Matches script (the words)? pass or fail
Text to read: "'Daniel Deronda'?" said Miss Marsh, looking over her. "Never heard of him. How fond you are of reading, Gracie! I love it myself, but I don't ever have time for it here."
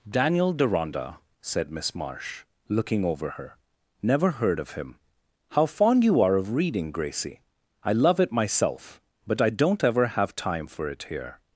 pass